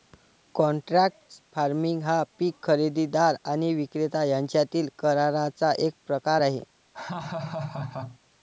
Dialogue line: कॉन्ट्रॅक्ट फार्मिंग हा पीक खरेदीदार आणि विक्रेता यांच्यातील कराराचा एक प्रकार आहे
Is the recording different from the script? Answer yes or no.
no